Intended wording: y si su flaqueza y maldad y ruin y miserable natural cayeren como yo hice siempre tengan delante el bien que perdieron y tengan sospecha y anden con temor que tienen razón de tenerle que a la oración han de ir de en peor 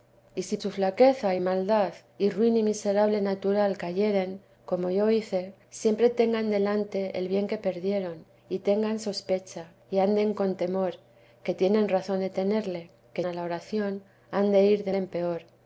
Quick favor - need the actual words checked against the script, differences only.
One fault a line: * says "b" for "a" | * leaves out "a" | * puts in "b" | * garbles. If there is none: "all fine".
all fine